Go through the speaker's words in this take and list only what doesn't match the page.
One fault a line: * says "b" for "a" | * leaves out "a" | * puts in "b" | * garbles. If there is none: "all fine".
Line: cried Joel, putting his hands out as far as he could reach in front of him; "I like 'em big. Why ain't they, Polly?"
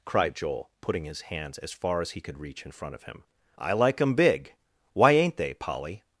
* leaves out "out"